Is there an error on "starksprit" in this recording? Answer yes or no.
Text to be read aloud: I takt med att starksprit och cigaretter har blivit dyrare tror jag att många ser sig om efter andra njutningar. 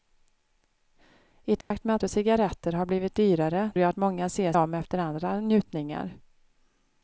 yes